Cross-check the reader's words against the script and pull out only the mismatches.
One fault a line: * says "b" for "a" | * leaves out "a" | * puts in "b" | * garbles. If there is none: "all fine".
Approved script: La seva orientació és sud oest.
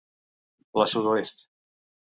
* leaves out "seva orientació és"